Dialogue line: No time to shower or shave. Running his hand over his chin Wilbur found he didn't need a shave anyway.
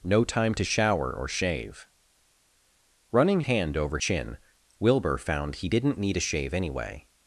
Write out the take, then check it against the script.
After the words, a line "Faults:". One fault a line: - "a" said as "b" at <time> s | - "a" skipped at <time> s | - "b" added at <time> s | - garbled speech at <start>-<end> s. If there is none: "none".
No time to shower or shave. Running hand over chin Wilbur found he didn't need a shave anyway.
Faults:
- "his" skipped at 3.4 s
- "his" skipped at 4.0 s